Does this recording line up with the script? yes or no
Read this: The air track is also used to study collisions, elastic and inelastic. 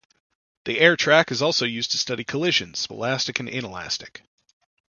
yes